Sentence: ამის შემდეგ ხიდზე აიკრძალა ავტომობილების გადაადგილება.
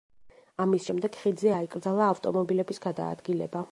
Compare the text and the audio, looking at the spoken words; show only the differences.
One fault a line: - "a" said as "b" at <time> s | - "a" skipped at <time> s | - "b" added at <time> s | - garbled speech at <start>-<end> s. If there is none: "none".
none